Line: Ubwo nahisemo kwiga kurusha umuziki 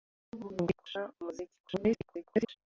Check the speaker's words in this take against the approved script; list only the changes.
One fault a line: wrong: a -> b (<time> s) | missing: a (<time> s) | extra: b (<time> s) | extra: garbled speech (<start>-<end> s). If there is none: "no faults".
missing: kwiga (0.7 s)
extra: garbled speech (1.6-2.6 s)